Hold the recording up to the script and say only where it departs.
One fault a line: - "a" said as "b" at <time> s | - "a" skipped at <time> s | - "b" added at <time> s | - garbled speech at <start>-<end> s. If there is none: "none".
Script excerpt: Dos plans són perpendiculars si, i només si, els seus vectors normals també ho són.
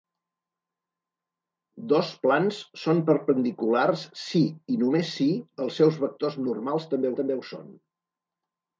- "també" added at 7.2 s